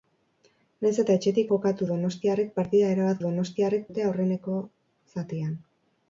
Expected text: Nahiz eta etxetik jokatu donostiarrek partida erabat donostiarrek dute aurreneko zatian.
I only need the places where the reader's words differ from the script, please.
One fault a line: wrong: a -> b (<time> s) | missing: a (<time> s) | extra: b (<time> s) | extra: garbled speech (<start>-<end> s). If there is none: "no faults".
no faults